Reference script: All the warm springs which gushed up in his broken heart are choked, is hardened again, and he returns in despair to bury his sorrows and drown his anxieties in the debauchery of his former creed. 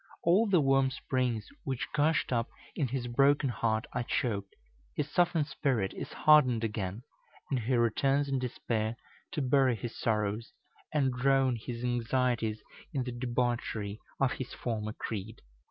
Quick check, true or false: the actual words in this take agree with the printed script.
false